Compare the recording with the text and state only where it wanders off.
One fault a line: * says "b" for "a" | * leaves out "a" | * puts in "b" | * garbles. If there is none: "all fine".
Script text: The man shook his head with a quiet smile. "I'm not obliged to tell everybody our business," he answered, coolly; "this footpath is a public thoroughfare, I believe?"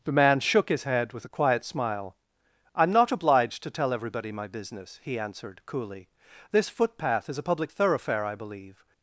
* says "my" for "our"